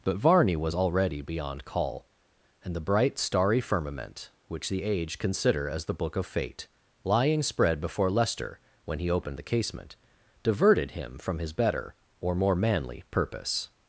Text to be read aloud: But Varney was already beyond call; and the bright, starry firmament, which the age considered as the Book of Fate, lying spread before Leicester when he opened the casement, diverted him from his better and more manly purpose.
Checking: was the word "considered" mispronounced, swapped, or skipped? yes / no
yes